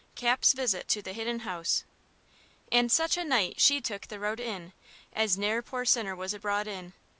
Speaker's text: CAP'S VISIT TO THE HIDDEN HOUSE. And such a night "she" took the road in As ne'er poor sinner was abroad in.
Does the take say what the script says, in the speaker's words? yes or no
yes